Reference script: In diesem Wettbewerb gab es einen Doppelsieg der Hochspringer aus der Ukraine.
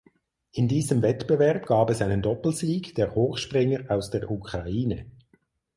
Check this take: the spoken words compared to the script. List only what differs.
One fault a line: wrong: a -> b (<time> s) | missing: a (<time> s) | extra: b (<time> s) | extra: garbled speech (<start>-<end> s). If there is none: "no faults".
no faults